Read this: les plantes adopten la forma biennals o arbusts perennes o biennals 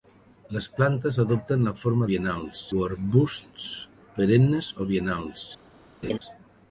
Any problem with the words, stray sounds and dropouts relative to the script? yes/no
yes